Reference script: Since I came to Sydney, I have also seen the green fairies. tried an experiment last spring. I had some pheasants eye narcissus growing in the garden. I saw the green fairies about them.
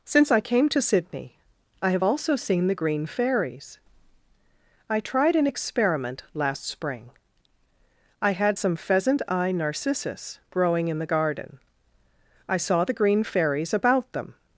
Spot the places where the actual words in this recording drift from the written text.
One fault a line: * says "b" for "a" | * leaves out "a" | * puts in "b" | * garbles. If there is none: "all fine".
* puts in "I"
* says "pheasant" for "pheasants"